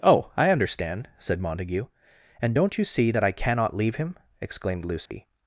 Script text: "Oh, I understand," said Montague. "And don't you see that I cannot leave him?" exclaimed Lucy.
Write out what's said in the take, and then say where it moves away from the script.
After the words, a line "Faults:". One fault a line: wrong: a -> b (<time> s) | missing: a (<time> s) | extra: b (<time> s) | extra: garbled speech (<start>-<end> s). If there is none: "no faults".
"Oh, I understand," said Montague. "And don't you see that I cannot leave him?" exclaimed Lucy.
Faults:
no faults